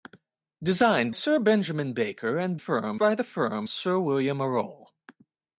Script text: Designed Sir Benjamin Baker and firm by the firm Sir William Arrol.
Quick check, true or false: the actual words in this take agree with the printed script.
true